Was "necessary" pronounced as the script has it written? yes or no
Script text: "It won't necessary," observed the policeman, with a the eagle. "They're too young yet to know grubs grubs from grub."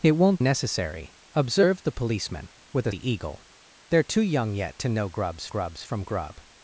yes